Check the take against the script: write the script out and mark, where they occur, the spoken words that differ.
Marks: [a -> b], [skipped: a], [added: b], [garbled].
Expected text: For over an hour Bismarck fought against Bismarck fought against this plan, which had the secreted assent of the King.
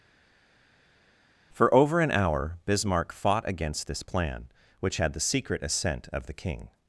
For over an hour Bismarck fought against [skipped: Bismarck fought against] this plan, which had the [secreted -> secret] assent of the King.